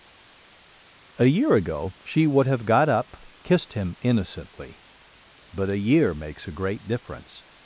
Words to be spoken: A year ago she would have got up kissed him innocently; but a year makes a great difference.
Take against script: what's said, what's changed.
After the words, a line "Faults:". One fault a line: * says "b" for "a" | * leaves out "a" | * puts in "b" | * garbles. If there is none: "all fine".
A year ago she would have got up kissed him innocently; but a year makes a great difference.
Faults:
all fine